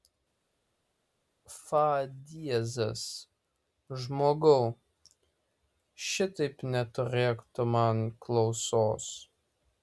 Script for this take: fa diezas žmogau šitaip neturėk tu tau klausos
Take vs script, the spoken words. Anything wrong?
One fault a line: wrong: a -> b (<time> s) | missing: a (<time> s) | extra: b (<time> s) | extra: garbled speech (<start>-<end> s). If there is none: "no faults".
wrong: tau -> man (7.8 s)